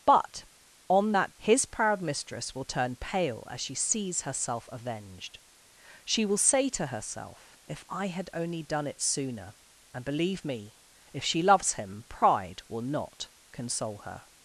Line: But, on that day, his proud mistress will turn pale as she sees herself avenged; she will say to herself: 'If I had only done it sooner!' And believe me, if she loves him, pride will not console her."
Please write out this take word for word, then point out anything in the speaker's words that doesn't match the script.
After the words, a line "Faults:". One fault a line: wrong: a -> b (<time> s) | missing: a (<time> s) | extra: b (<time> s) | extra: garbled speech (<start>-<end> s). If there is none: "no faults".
But, on that his proud mistress will turn pale as she sees herself avenged; she will say to herself: 'If I had only done it sooner!' And believe me, if she loves him, pride will not console her."
Faults:
missing: day (1.3 s)